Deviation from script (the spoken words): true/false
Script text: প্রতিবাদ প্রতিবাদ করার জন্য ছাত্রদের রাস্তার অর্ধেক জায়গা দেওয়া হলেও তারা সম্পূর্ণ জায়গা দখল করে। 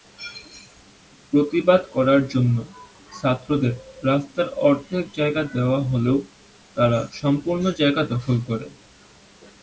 true